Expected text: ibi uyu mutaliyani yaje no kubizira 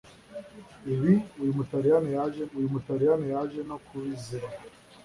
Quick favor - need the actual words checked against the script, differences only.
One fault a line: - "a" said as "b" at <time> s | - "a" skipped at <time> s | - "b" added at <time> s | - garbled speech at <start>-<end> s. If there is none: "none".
- "uyu mutaliyani yaje" added at 2.6 s